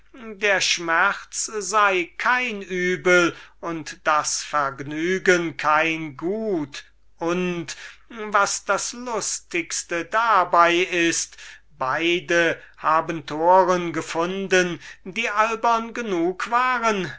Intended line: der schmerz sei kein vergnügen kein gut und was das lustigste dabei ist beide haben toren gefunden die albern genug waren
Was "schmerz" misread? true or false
false